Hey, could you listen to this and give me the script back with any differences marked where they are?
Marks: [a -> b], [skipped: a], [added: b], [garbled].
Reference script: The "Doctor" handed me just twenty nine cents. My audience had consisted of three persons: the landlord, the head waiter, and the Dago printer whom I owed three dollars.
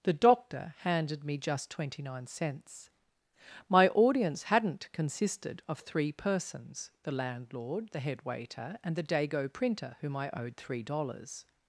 The "Doctor" handed me just twenty nine cents. My audience [had -> hadn't] consisted of three persons: the landlord, the head waiter, and the Dago printer whom I owed three dollars.